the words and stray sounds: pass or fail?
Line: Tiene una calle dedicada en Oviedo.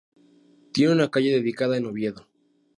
pass